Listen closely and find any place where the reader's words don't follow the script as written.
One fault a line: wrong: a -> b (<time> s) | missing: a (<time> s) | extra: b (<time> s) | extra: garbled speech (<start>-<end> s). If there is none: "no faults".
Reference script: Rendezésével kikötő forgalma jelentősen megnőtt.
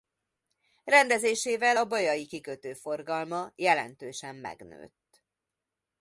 extra: a bajai (1.7 s)